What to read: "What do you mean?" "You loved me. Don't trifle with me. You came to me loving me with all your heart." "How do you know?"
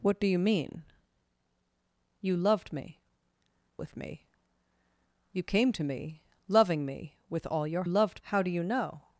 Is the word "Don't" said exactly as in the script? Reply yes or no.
no